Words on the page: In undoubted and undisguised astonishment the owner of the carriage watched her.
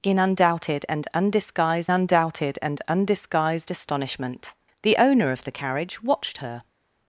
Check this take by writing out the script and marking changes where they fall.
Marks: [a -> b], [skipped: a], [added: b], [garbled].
In undoubted and undisguised [added: undoubted and undisguised] astonishment the owner of the carriage watched her.